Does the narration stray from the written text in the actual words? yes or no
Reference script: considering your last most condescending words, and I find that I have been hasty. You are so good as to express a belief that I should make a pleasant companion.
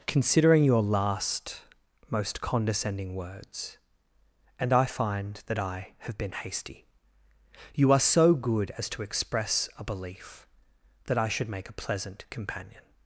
no